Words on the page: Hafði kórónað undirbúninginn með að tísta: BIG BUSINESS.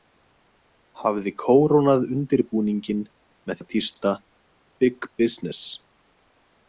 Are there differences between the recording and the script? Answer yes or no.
no